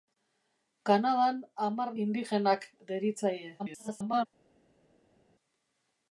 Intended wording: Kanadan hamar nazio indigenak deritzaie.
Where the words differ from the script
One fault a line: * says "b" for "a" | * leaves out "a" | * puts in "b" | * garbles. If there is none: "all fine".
* leaves out "nazio"
* garbles